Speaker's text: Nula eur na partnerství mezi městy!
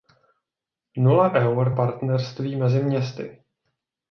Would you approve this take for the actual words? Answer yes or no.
no